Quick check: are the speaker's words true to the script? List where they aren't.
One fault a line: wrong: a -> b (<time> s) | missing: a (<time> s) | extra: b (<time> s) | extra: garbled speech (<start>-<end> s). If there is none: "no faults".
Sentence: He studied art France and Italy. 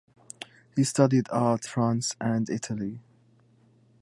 no faults